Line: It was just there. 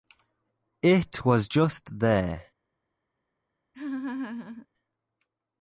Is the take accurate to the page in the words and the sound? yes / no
no